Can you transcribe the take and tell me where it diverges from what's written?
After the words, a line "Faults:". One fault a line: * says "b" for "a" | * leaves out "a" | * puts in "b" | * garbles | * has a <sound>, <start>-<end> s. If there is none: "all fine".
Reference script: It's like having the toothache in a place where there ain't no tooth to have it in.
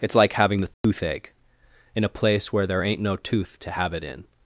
It's like having the toothache in a place where there ain't no tooth to have it in.
Faults:
* has a dropout, 0.7-0.8 s